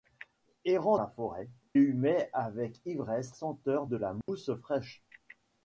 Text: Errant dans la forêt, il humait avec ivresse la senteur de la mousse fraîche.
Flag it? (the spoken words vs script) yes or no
yes